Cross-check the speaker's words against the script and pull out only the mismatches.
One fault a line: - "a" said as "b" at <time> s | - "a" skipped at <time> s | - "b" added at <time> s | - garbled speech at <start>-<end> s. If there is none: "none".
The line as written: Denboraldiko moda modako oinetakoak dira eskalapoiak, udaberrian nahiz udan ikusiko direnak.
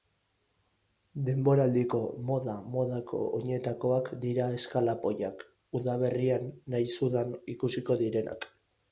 none